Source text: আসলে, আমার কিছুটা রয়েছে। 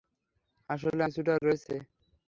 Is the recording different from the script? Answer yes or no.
yes